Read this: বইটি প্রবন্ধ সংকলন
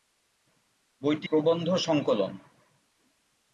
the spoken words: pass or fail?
pass